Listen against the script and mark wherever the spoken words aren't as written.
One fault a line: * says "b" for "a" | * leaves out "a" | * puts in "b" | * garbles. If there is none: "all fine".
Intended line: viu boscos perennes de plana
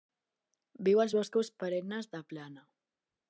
* puts in "als"